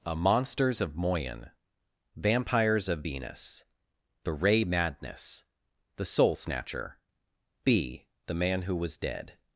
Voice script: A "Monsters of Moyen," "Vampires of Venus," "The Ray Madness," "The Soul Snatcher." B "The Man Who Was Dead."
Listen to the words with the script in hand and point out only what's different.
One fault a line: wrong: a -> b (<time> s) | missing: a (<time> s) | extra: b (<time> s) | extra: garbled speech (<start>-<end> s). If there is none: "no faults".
no faults